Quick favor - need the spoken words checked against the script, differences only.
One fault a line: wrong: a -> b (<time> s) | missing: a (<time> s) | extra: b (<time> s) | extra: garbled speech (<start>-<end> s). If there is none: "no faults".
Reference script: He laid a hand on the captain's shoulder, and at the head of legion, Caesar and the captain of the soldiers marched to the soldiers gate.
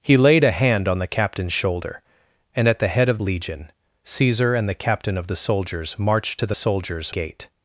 no faults